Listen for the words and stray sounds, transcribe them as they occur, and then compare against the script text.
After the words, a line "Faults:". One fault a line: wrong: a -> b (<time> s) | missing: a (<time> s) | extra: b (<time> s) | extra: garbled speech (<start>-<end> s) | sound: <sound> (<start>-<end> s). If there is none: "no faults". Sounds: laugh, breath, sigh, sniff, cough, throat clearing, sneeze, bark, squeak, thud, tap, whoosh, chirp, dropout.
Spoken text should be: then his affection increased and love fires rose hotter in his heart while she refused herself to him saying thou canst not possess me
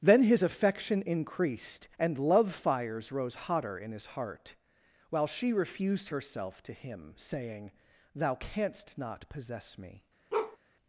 then his affection increased and love fires rose hotter in his heart while she refused herself to him saying thou canst not possess me
Faults:
sound: bark (10.3-10.6 s)